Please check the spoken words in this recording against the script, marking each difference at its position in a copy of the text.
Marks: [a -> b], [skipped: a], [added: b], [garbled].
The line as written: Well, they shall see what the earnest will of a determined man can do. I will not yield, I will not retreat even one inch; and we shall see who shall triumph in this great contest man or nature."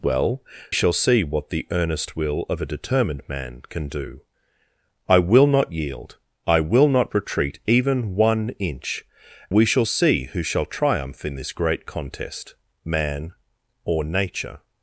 Well, [skipped: they] shall see what the earnest will of a determined man can do. I will not yield, I will not retreat even one inch; [skipped: and] we shall see who shall triumph in this great contest man or nature."